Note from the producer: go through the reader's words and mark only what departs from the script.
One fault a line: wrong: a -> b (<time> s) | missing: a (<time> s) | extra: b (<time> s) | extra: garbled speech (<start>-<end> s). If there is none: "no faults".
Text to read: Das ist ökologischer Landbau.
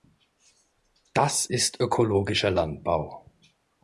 no faults